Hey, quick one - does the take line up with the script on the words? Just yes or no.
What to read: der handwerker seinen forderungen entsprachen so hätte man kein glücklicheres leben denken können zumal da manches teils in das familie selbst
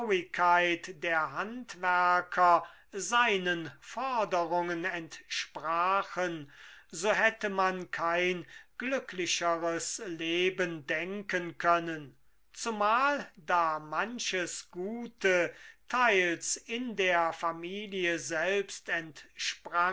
no